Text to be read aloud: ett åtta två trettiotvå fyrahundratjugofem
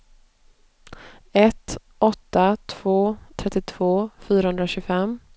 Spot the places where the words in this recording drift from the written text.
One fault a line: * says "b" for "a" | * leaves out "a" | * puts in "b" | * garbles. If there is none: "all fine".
all fine